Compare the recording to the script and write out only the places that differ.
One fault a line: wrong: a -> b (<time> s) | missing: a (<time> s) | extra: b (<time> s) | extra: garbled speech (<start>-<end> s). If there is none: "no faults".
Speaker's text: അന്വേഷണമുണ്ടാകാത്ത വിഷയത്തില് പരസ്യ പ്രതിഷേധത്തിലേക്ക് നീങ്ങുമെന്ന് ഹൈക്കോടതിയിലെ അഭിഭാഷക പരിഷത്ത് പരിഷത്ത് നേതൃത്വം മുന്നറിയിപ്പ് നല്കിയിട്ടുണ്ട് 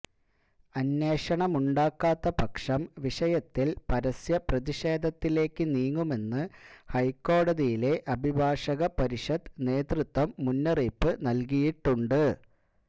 extra: പക്ഷം (2.4 s)
missing: പരിഷത്ത് (9.5 s)